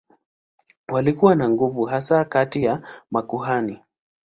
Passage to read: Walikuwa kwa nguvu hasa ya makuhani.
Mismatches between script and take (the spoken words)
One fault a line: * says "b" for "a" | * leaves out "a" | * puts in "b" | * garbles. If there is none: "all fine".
* says "na" for "kwa"
* puts in "kati"